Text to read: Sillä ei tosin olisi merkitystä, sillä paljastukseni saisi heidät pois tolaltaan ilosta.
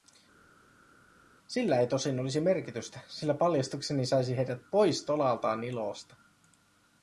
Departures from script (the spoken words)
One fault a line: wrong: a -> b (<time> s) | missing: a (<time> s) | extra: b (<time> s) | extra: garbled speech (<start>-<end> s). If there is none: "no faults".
no faults